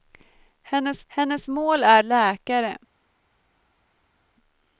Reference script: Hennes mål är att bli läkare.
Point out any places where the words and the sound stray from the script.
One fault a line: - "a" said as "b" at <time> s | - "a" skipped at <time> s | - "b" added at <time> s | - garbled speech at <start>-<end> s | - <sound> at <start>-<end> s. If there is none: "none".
- "hennes" added at 1.1 s
- "att bli" skipped at 2.0 s